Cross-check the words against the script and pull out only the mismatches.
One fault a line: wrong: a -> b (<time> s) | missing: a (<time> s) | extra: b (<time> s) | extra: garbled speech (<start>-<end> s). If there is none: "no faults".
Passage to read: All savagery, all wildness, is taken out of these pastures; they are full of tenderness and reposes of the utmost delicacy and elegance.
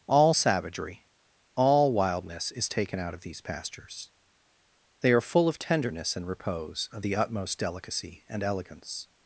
wrong: reposes -> repose (6.2 s)